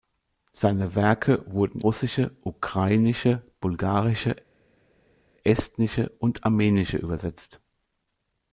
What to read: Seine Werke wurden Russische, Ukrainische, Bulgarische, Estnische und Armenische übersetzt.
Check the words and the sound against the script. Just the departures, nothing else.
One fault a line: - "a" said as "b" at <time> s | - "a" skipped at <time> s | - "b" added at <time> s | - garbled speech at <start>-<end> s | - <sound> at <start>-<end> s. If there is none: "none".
none